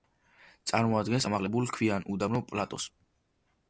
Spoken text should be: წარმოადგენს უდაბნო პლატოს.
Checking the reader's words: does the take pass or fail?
fail